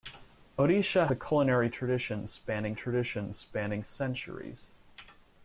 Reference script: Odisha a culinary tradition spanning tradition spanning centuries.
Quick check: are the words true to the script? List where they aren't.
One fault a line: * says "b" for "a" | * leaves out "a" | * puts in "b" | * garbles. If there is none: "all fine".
all fine